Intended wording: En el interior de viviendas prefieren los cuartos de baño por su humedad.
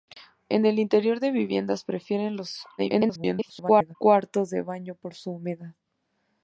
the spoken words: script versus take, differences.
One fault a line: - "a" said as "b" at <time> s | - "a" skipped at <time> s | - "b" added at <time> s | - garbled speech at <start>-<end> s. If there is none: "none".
- garbled speech at 2.8-4.0 s